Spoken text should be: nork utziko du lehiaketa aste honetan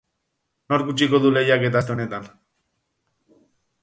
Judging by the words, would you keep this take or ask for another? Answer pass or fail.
pass